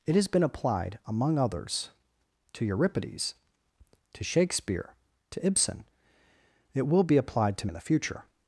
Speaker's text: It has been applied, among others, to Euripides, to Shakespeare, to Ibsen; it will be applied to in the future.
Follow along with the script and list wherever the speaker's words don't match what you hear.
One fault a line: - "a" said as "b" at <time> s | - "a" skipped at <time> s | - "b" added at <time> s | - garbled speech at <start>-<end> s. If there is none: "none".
none